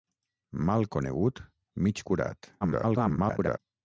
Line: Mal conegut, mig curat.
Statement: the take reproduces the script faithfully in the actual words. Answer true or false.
false